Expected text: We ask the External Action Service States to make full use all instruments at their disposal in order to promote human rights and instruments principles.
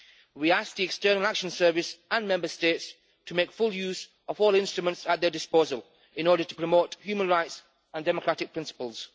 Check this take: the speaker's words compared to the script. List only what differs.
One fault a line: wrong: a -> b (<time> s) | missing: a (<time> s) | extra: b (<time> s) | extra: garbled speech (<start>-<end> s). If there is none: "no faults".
extra: and Member (2.1 s)
extra: of (4.3 s)
wrong: instruments -> democratic (8.0 s)